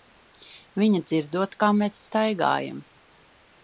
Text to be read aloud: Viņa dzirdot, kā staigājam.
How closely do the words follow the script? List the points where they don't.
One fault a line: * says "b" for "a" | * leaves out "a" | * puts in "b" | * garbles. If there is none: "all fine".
* puts in "mēs"